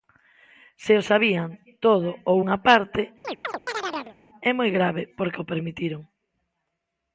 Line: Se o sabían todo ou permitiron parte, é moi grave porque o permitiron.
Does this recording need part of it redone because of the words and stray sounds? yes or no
yes